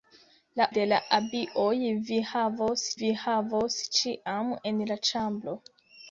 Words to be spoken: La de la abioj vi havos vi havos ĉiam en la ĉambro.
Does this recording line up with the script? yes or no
yes